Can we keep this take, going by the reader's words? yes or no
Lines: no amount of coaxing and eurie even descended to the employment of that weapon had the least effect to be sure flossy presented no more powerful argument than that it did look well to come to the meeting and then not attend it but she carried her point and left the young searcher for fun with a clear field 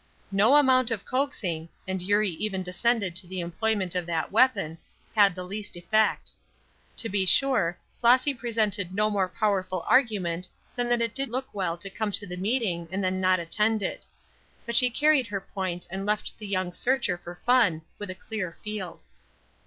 yes